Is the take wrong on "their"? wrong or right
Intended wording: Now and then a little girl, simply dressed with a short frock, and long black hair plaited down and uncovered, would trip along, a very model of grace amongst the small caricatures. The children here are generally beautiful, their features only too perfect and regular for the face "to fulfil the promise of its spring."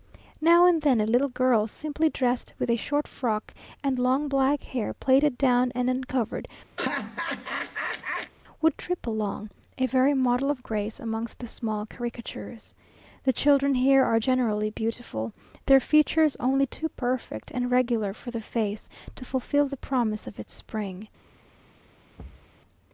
right